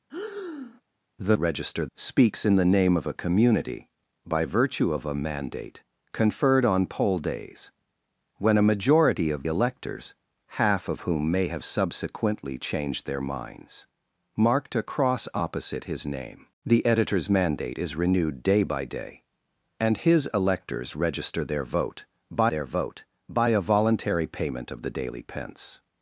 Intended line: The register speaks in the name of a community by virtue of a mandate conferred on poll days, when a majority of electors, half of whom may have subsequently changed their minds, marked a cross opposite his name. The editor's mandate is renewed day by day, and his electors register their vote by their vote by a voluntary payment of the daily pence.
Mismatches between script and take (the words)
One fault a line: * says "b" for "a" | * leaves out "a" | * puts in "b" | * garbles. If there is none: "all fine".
all fine